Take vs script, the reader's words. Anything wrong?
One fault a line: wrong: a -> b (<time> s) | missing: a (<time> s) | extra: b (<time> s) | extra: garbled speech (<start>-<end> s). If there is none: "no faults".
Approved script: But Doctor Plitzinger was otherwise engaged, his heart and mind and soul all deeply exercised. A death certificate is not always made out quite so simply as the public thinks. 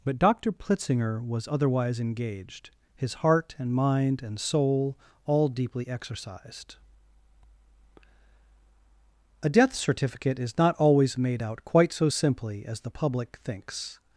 no faults